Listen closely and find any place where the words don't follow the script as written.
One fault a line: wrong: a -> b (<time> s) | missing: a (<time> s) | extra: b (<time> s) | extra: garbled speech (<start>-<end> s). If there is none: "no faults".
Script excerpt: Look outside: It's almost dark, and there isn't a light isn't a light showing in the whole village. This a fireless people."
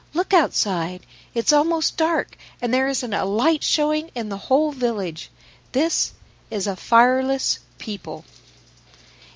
missing: isn't a light (3.6 s)
extra: is (6.5 s)